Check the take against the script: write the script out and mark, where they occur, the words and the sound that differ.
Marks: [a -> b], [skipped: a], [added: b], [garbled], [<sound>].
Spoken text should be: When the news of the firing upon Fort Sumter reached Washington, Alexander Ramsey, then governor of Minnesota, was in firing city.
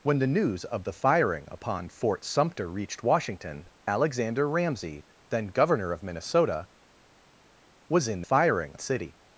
When the news of the firing upon Fort Sumter reached Washington, Alexander Ramsey, then governor of Minnesota, was in firing city.